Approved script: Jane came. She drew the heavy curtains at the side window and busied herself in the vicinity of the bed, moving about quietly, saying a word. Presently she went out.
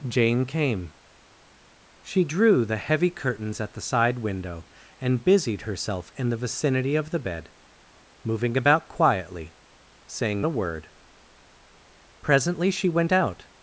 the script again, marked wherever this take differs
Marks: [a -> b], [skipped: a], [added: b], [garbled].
Jane came. She drew the heavy curtains at the side window and busied herself in the vicinity of the bed, moving about quietly, saying a word. Presently she went out.